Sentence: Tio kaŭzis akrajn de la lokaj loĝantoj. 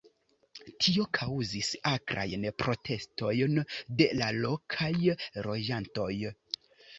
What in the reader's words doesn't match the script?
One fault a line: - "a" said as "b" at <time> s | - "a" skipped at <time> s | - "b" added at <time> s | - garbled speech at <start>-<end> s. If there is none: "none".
- "protestojn" added at 2.6 s